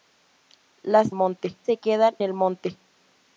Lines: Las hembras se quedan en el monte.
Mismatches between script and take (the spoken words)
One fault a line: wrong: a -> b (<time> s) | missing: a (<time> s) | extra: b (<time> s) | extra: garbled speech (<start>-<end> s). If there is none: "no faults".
wrong: hembras -> monte (1.1 s)
missing: en (2.2 s)